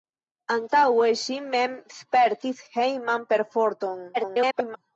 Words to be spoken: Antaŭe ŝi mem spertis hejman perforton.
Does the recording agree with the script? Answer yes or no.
no